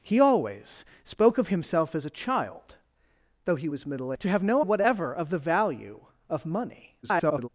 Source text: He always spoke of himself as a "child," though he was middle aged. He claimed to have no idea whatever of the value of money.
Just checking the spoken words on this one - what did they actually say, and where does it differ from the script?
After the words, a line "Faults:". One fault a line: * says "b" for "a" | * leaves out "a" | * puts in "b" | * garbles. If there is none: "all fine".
He always spoke of himself as a "child," though he was middle to have no whatever of the value of money. [garbled]
Faults:
* leaves out "aged He claimed"
* leaves out "idea"
* garbles